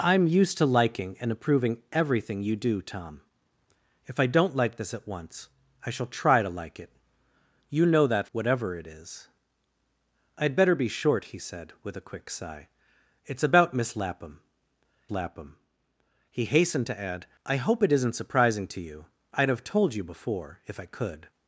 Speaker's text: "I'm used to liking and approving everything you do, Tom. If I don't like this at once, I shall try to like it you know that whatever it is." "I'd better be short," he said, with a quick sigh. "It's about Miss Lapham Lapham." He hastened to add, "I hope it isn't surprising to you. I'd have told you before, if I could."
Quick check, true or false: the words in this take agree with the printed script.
true